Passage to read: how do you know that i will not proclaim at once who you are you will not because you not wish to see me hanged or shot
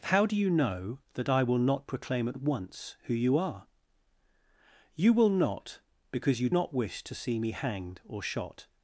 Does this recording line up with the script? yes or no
yes